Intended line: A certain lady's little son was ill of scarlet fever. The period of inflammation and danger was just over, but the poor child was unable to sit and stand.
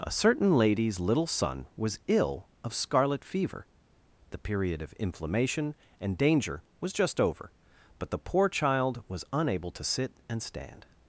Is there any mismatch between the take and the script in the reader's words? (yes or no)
no